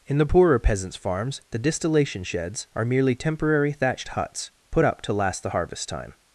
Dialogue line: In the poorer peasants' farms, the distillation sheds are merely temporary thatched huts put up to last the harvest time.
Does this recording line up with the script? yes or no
yes